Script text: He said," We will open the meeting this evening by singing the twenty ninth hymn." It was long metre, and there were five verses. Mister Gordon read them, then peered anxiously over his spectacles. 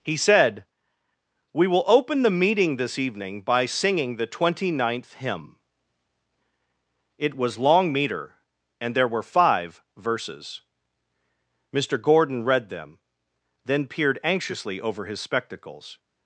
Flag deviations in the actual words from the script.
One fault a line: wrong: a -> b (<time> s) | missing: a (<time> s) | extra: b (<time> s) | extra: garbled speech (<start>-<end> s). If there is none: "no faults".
no faults